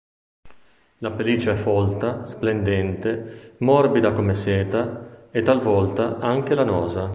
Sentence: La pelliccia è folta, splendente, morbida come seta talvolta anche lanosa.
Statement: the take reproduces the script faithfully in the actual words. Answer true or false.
false